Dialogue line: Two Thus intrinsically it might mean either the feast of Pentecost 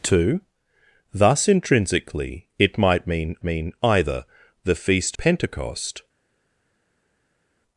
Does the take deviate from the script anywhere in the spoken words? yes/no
yes